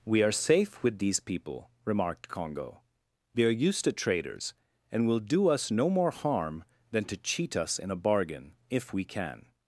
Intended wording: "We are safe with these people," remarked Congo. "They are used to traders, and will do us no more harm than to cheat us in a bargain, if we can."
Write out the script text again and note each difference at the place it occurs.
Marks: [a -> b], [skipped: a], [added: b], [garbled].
"We are safe with these people," remarked Congo. "They are used to traders, and will do us no more harm than to cheat us in a bargain, if we can."